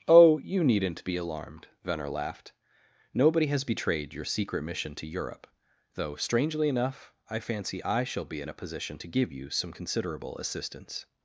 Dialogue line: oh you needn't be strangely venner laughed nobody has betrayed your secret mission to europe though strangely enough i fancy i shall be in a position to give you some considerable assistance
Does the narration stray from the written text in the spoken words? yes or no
yes